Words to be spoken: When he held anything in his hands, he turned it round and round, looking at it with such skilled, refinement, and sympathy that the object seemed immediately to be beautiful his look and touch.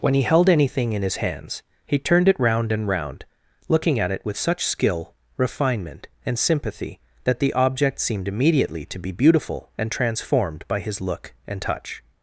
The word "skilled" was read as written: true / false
false